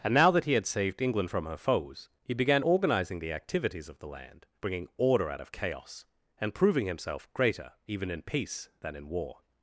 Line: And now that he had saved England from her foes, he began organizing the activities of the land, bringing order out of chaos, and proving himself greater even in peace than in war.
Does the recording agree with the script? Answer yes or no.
yes